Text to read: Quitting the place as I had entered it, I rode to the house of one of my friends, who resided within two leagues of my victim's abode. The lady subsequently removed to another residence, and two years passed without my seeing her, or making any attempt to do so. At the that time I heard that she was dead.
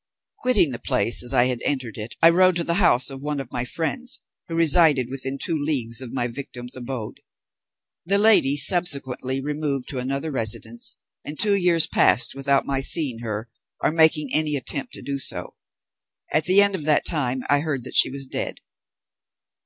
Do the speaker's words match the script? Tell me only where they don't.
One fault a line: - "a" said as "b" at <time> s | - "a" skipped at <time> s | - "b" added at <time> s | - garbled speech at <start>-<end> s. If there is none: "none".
- "end of" added at 16.6 s